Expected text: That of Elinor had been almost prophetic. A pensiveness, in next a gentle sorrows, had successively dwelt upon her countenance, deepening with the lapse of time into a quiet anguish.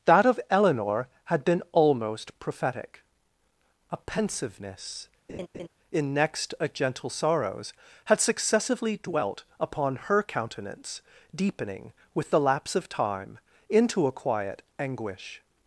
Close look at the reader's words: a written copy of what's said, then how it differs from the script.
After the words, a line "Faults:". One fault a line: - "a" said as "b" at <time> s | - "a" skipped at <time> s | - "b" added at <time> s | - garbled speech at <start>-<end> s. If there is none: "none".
That of Elinor had been almost prophetic. A pensiveness, in next a gentle sorrows, had successively dwelt upon her countenance, deepening with the lapse of time into a quiet anguish.
Faults:
none